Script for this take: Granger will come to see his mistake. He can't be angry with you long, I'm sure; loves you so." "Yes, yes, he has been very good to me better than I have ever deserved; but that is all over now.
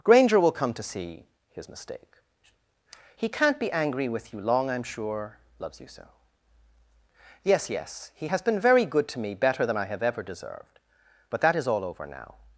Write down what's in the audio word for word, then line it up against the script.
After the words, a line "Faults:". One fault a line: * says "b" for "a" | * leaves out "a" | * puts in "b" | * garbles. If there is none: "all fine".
Granger will come to see his mistake. He can't be angry with you long, I'm sure; loves you so." "Yes, yes, he has been very good to me better than I have ever deserved; but that is all over now.
Faults:
all fine